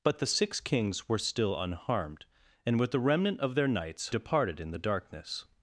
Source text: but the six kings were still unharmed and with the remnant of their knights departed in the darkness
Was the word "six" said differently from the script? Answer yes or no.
no